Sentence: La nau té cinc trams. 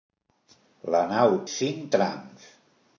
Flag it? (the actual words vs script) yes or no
yes